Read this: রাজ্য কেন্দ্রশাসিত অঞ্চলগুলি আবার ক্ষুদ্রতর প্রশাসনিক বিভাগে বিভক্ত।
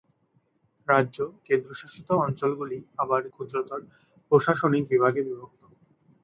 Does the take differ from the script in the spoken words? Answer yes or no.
no